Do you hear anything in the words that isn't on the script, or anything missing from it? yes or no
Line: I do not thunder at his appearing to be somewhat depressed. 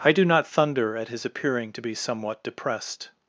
no